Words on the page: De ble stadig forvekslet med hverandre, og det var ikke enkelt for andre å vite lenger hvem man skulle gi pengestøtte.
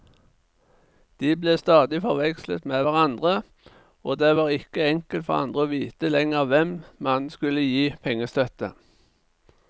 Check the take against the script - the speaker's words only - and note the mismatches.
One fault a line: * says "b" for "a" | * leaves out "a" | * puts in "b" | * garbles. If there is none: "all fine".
all fine